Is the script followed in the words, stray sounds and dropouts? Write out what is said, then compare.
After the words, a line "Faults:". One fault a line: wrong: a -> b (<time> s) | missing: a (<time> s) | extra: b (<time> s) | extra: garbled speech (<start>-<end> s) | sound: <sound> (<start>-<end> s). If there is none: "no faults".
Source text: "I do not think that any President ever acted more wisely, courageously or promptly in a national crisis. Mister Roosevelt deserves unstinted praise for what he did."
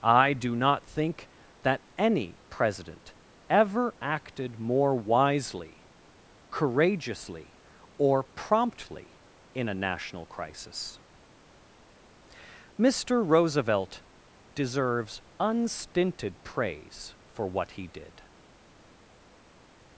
"I do not think that any President ever acted more wisely, courageously or promptly in a national crisis. Mister Roosevelt deserves unstinted praise for what he did."
Faults:
no faults